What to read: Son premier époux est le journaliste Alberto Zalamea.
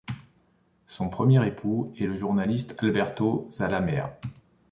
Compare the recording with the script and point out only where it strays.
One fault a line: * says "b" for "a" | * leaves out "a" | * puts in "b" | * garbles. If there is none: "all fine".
all fine